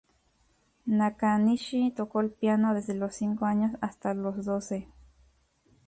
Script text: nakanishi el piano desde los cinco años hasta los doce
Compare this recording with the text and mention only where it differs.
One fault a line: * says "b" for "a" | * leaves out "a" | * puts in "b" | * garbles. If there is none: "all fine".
* puts in "tocó"